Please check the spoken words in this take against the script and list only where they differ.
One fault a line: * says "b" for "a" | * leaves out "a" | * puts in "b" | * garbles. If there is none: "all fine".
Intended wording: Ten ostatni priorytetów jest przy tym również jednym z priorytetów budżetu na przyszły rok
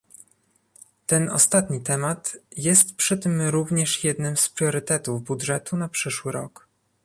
* says "temat" for "priorytetów"